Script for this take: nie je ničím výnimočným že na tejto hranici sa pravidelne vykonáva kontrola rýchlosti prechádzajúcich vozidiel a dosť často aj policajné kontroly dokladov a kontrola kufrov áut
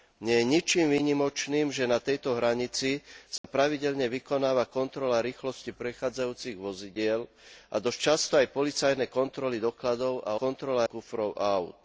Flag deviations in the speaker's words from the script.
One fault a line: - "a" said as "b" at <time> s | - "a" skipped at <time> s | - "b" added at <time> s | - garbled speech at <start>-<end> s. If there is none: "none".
none